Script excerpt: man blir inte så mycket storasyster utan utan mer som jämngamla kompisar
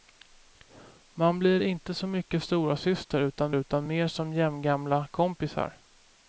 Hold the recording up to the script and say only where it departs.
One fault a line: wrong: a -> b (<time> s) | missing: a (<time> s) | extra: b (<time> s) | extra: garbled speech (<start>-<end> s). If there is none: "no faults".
no faults